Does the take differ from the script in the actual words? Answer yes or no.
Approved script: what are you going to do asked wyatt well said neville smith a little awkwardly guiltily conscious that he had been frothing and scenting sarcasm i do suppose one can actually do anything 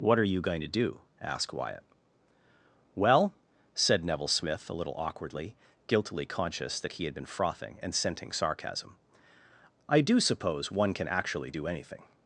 no